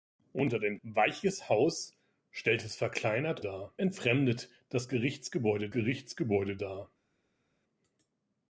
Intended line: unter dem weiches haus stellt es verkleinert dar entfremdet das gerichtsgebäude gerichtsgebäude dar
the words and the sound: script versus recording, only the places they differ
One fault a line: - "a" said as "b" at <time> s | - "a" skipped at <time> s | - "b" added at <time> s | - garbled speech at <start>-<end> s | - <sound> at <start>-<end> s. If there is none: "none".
none